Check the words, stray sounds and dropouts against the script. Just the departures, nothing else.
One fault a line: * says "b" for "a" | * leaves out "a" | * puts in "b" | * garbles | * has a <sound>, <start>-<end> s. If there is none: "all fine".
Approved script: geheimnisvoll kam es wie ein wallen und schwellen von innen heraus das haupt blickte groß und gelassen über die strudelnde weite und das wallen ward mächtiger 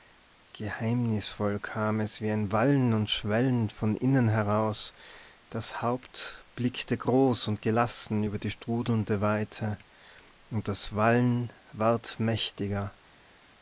all fine